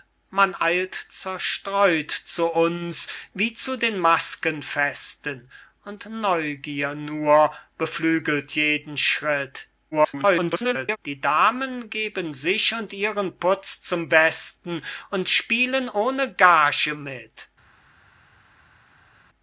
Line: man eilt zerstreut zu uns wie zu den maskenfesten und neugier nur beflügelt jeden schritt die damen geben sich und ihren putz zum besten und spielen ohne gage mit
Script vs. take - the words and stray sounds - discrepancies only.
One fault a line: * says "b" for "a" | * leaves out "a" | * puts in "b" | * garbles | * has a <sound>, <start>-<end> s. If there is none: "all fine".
* garbles